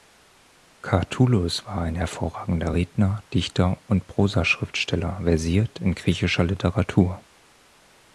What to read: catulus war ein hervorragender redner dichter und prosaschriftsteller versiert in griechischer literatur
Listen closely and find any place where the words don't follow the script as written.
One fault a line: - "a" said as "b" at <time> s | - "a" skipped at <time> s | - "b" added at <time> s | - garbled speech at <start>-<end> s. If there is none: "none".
none